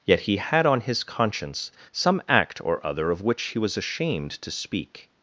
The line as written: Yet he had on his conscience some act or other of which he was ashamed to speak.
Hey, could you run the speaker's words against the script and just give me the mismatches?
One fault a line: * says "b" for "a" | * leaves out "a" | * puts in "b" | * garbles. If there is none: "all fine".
all fine